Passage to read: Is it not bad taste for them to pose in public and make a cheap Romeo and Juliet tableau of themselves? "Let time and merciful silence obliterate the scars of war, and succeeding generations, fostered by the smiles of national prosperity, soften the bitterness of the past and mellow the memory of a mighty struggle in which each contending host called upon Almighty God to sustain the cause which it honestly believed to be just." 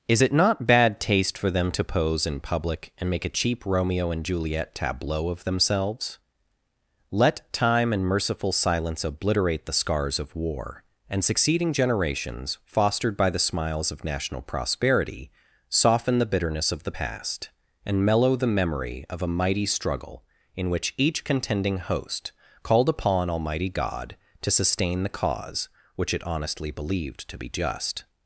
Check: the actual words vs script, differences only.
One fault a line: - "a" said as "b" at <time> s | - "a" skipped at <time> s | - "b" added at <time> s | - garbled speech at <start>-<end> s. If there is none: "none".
none